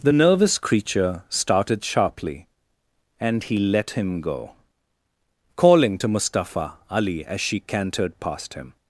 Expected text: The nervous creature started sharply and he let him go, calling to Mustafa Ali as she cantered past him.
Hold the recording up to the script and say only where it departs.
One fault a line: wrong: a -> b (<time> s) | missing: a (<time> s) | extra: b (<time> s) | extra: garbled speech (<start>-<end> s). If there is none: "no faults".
no faults